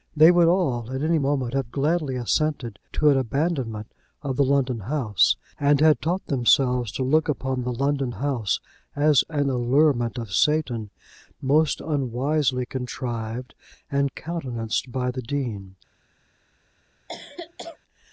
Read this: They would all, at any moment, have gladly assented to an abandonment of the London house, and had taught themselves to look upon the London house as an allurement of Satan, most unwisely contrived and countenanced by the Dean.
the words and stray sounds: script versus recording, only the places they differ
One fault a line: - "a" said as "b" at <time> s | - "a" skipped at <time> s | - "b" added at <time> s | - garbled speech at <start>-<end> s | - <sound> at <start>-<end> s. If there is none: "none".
- cough at 17.1-17.8 s